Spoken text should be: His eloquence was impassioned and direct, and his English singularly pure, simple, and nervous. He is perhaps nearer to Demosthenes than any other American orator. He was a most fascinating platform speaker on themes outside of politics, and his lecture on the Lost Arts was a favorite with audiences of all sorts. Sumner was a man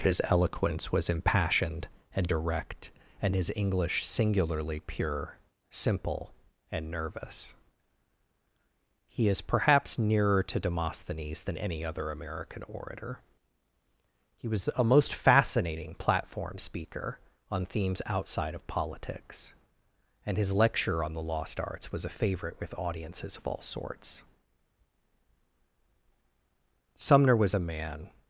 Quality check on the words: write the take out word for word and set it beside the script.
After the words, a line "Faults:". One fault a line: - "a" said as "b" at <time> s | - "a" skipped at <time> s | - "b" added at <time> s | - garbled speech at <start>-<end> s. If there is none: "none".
His eloquence was impassioned and direct, and his English singularly pure, simple, and nervous. He is perhaps nearer to Demosthenes than any other American orator. He was a most fascinating platform speaker on themes outside of politics, and his lecture on the Lost Arts was a favorite with audiences of all sorts. Sumner was a man
Faults:
none